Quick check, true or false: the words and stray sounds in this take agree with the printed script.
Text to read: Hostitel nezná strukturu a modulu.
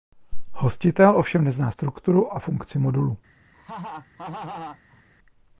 false